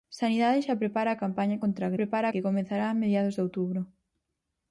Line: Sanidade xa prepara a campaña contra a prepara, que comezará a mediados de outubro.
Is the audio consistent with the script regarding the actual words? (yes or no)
yes